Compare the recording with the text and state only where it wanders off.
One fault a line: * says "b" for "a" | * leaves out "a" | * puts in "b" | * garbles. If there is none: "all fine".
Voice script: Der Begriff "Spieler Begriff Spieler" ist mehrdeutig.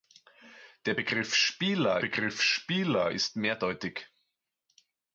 all fine